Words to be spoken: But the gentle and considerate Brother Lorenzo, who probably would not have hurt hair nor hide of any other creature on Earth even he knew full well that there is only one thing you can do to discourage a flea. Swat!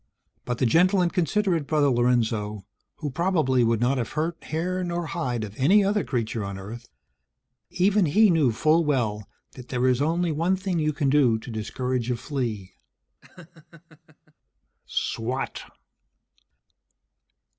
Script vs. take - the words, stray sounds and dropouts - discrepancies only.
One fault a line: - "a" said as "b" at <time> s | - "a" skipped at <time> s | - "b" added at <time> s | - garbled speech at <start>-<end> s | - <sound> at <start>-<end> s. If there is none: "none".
- laugh at 13.2-14.3 s